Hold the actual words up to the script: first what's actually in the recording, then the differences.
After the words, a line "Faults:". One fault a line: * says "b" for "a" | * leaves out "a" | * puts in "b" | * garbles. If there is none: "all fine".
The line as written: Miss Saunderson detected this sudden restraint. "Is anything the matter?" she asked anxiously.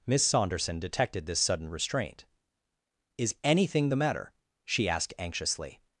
Miss Saunderson detected this sudden restraint. "Is anything the matter?" she asked anxiously.
Faults:
all fine